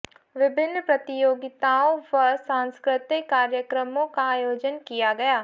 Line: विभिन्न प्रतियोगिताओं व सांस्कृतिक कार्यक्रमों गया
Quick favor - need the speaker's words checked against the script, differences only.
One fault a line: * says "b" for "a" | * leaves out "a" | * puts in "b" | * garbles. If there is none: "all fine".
* puts in "का आयोजन किया"